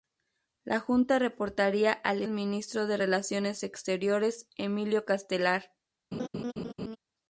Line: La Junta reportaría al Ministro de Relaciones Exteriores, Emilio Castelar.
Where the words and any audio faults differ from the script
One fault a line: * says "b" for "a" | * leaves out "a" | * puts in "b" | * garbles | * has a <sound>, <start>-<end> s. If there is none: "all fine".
* has a laugh, 6.1-7.0 s